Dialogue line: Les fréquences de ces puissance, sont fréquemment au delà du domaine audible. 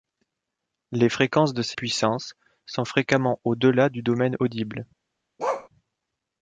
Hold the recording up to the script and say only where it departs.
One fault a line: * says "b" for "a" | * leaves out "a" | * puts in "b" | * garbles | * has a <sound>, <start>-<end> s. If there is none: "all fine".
* has a bark, 5.4-5.7 s